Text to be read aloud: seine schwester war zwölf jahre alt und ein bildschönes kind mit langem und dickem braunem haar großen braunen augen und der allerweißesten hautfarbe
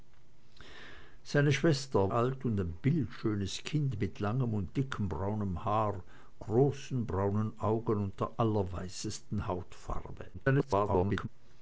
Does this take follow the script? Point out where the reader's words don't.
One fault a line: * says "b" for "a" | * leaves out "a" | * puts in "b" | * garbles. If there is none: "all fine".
* leaves out "war zwölf jahre"
* garbles